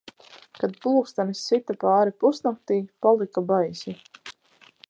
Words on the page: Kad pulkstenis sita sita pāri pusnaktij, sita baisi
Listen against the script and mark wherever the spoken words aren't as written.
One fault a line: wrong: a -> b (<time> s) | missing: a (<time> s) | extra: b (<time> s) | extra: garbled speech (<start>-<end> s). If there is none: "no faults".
missing: sita (1.8 s)
wrong: sita -> palika (3.1 s)